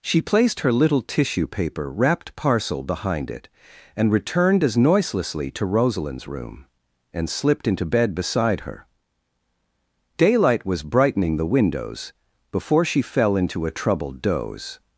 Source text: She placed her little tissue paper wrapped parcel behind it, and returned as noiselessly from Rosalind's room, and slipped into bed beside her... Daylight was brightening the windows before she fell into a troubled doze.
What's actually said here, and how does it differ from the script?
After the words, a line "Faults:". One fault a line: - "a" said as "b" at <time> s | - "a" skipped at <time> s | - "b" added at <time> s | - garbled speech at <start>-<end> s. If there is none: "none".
She placed her little tissue paper wrapped parcel behind it, and returned as noiselessly to Rosalind's room, and slipped into bed beside her... Daylight was brightening the windows before she fell into a troubled doze.
Faults:
- "from" said as "to" at 5.5 s